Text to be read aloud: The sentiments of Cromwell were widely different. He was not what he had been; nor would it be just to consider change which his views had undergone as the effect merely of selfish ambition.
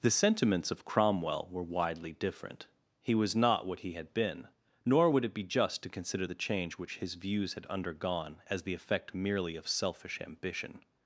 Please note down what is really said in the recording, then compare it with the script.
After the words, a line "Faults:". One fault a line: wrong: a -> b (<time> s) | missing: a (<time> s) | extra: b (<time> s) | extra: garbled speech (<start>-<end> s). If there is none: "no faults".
The sentiments of Cromwell were widely different. He was not what he had been; nor would it be just to consider the change which his views had undergone as the effect merely of selfish ambition.
Faults:
extra: the (6.2 s)